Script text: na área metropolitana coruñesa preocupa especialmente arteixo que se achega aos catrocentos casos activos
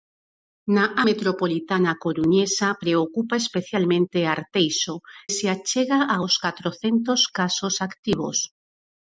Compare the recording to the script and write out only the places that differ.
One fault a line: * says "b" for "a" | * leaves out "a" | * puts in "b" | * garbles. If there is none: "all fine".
* leaves out "área"
* leaves out "que"